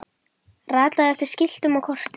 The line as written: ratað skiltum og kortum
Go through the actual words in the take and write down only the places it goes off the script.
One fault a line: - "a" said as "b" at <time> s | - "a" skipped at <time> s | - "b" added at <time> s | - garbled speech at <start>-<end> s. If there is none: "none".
- "eftir" added at 1.1 s